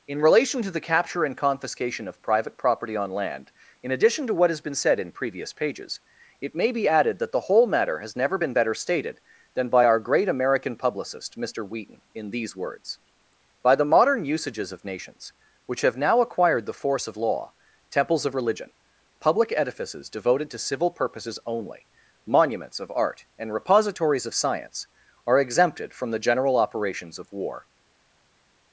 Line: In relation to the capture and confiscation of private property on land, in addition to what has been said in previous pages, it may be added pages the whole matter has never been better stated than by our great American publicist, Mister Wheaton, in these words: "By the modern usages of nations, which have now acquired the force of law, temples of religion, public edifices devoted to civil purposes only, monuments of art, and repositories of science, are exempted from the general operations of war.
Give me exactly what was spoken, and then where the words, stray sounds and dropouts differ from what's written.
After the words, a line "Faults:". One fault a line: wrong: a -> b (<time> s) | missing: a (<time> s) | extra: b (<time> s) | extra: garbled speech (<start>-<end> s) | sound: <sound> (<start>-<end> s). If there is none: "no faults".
In relation to the capture and confiscation of private property on land, in addition to what has been said in previous pages, it may be added that the whole matter has never been better stated than by our great American publicist, Mister Wheaton, in these words: "By the modern usages of nations, which have now acquired the force of law, temples of religion, public edifices devoted to civil purposes only, monuments of art, and repositories of science, are exempted from the general operations of war.
Faults:
wrong: pages -> that (7.2 s)